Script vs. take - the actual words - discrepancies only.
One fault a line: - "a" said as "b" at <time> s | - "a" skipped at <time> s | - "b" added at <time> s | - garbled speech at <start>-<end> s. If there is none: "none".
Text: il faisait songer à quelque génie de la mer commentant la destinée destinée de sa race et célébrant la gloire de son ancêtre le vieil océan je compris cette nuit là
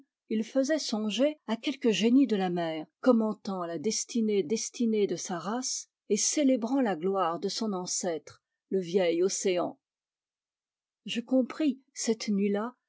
none